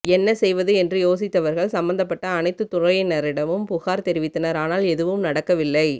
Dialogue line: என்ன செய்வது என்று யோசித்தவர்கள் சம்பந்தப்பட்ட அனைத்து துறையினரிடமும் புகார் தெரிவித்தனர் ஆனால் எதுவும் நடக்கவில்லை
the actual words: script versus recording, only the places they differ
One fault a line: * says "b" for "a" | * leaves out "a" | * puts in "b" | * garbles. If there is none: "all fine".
all fine